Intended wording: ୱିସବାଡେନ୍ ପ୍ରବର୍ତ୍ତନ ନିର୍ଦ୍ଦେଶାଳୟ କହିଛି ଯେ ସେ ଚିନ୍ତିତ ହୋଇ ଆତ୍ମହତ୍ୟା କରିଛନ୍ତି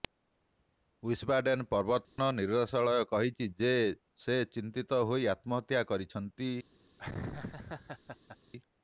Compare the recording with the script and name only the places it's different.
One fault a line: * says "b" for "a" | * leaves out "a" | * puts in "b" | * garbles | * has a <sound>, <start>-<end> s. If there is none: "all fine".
* has a dropout, 2.0-2.2 s
* has a laugh, 7.0-8.4 s